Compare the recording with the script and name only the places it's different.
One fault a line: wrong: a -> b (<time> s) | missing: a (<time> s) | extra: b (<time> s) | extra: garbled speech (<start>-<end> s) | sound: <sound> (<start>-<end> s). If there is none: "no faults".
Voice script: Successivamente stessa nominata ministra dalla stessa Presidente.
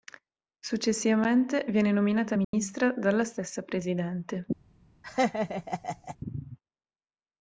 wrong: stessa -> viene (1.7 s)
sound: dropout (2.4-2.5 s)
sound: laugh (5.0-6.2 s)